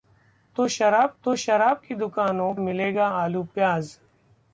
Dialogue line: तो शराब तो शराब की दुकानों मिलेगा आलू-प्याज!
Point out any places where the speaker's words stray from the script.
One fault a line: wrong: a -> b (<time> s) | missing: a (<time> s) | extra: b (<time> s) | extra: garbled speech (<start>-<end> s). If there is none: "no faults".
no faults